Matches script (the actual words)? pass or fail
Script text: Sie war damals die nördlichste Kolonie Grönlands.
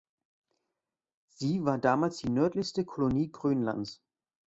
pass